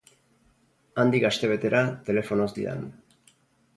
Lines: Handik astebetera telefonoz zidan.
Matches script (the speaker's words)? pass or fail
pass